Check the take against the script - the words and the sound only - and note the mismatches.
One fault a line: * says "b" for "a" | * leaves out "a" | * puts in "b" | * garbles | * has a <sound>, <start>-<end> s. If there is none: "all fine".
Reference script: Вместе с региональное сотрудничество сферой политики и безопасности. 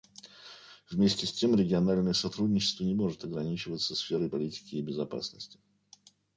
* puts in "тем"
* puts in "не может ограничиваться"